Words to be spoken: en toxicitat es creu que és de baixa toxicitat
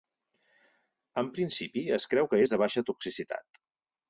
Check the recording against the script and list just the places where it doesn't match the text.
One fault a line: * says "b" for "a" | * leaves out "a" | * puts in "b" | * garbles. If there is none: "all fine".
* says "principi" for "toxicitat"